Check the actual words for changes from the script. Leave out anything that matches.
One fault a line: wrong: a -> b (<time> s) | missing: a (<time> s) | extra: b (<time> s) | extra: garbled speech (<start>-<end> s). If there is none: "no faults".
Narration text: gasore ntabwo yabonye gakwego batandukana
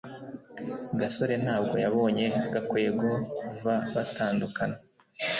extra: kuva (3.4 s)